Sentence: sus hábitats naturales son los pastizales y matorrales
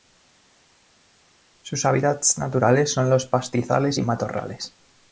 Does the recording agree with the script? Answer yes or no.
yes